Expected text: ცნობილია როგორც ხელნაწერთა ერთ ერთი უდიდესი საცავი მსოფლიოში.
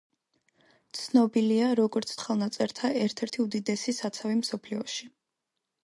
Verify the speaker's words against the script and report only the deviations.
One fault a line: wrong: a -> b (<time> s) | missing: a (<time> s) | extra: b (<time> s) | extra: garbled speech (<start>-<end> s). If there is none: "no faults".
no faults